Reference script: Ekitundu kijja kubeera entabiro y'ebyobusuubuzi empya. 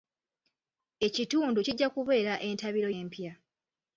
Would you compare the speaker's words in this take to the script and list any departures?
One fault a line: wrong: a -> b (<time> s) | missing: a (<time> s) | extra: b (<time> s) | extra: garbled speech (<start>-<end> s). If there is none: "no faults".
missing: y'ebyobusuubuzi (2.9 s)